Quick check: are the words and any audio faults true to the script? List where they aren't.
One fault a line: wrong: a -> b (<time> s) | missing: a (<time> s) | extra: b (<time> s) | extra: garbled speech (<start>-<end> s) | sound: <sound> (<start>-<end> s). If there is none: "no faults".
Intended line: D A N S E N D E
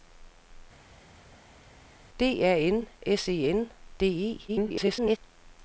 extra: garbled speech (4.5-5.2 s)